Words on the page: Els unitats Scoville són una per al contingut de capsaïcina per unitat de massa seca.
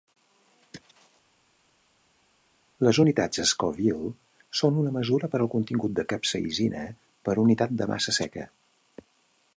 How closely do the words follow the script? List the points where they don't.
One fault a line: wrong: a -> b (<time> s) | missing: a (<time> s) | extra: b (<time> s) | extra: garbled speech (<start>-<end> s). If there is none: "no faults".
wrong: Els -> Les (2.9 s)
extra: mesura (5.0 s)